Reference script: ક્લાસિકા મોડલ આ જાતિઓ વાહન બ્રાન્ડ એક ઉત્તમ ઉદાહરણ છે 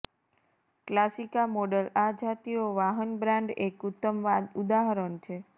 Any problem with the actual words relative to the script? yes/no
no